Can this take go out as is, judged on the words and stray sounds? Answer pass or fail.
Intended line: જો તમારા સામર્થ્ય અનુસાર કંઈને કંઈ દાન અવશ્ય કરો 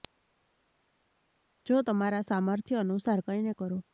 fail